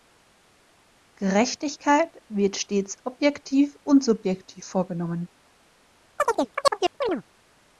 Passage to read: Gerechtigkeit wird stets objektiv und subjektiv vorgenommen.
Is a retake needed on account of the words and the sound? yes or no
yes